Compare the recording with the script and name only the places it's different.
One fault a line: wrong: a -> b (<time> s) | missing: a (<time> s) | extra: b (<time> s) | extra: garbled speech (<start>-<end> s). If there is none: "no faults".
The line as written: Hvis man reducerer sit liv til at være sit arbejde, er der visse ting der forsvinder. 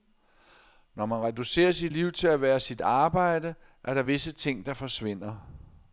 wrong: Hvis -> Når (0.9 s)